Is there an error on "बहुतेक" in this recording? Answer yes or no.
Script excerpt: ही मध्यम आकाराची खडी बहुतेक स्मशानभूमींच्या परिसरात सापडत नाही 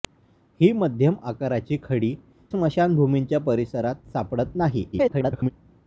yes